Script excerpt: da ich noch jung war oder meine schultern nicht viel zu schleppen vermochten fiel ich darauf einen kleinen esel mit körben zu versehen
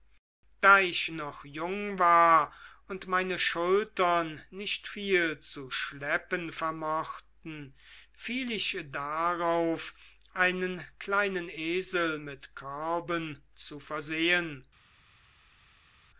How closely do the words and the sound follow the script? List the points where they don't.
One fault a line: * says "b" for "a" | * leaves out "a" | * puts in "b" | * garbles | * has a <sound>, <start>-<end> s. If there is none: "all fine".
* says "und" for "oder"